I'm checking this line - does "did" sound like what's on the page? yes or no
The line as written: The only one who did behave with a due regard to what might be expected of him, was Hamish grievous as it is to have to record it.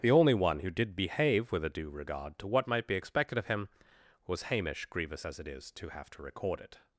yes